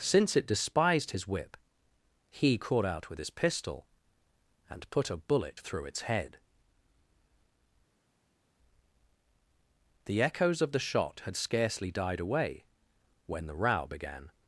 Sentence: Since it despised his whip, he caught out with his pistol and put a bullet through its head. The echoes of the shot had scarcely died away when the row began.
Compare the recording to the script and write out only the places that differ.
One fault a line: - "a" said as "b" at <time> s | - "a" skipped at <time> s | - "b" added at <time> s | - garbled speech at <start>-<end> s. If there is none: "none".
none